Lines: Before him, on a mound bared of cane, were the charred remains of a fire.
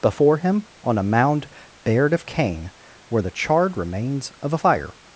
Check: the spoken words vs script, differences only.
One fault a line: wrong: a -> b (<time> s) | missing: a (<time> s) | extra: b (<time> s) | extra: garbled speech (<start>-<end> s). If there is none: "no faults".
no faults